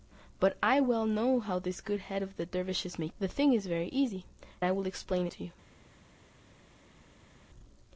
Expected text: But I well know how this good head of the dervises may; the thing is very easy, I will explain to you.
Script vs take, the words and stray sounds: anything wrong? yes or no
no